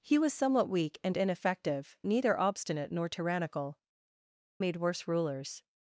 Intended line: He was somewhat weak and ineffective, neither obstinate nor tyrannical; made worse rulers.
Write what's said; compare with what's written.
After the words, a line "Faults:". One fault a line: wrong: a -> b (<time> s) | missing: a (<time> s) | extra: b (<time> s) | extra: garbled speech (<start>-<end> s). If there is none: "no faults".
He was somewhat weak and ineffective, neither obstinate nor tyrannical; made worse rulers.
Faults:
no faults